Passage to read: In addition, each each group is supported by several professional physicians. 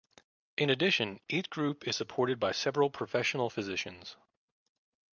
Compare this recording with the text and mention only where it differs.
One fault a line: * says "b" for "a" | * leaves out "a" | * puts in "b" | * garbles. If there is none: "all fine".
* leaves out "each"